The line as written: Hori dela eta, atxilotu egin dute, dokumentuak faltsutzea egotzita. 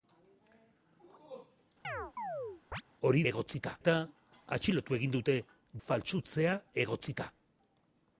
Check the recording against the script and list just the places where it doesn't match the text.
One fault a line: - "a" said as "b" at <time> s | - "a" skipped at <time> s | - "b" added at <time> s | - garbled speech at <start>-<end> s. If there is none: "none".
- "dela" said as "egotzita" at 3.3 s
- "dokumentuak" skipped at 5.4 s